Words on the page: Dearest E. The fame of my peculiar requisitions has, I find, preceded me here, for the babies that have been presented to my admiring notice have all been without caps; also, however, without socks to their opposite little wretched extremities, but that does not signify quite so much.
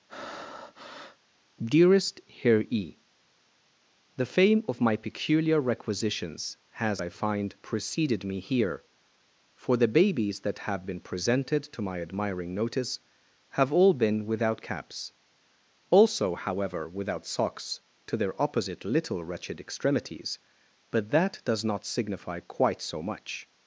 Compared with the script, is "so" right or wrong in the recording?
right